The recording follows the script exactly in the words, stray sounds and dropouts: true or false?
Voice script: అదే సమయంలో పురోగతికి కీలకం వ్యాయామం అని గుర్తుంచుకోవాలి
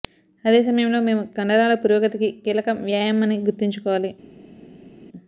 false